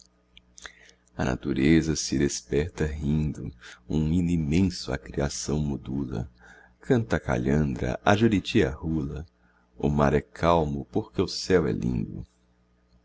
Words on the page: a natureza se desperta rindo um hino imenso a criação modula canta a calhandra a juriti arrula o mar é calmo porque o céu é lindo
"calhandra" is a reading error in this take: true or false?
false